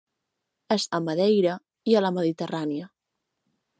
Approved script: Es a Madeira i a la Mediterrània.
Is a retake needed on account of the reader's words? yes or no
no